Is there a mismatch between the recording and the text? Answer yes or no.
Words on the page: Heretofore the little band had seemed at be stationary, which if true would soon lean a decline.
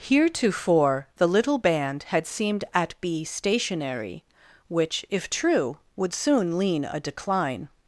no